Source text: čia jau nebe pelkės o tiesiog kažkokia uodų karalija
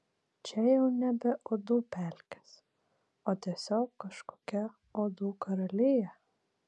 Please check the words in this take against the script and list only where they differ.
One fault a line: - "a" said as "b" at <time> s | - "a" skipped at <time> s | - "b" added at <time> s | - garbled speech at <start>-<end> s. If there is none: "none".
- "uodų" added at 1.5 s